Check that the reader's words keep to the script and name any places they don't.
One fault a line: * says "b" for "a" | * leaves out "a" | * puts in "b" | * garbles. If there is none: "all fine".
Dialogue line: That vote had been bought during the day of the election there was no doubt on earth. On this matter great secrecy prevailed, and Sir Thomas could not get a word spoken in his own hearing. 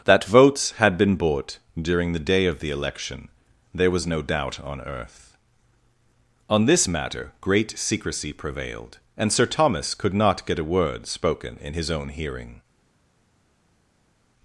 * says "votes" for "vote"